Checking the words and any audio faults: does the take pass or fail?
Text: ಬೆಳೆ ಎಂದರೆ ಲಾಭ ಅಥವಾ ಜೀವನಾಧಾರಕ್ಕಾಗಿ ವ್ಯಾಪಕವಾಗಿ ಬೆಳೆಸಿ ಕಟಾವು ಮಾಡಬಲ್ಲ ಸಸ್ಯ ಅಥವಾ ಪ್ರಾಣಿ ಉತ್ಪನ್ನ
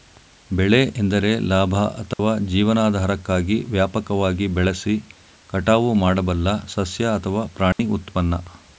fail